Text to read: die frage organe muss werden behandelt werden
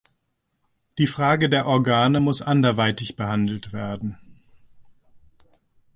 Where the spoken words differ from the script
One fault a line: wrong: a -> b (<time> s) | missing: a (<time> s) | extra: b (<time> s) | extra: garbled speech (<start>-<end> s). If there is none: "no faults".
extra: der (1.5 s)
wrong: werden -> anderweitig (2.4 s)